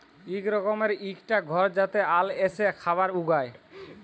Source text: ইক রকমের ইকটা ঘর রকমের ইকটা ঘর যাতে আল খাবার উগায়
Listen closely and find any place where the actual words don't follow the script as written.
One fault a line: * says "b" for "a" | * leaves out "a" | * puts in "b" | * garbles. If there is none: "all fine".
* leaves out "রকমের ইকটা ঘর"
* puts in "এসে"